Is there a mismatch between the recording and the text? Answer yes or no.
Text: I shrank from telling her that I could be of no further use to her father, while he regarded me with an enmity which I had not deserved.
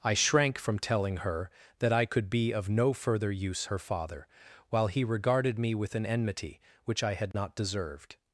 yes